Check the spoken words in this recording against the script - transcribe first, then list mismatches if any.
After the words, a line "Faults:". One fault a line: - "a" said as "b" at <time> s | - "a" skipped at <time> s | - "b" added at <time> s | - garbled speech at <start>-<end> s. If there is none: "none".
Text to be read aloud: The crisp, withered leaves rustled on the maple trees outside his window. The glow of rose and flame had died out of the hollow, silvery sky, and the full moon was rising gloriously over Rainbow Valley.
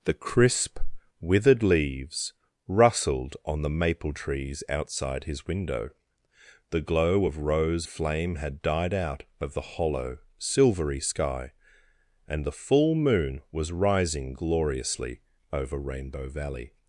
The crisp, withered leaves rustled on the maple trees outside his window. The glow of rose flame had died out of the hollow, silvery sky, and the full moon was rising gloriously over Rainbow Valley.
Faults:
- "and" skipped at 7.9 s